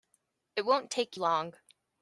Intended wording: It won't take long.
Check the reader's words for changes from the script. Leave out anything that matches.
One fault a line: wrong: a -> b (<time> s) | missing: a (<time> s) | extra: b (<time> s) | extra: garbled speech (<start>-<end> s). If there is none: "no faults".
no faults